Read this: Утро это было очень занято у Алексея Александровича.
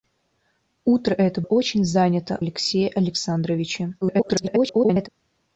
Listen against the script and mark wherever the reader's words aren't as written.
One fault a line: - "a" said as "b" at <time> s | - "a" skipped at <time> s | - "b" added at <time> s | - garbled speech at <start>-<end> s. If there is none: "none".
- "было" skipped at 1.4 s
- "у" skipped at 2.4 s
- garbled speech at 4.0-5.1 s